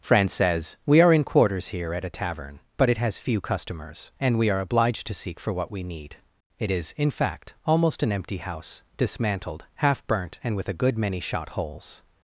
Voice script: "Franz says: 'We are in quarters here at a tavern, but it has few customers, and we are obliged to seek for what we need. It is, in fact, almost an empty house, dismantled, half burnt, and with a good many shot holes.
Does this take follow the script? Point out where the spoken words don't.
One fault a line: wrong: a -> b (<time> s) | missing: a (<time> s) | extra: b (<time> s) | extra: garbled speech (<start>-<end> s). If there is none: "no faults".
no faults